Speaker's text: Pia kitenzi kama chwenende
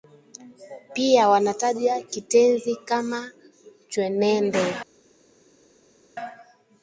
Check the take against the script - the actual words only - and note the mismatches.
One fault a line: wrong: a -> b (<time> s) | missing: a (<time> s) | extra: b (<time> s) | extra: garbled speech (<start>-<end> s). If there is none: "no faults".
extra: wanataja (1.3 s)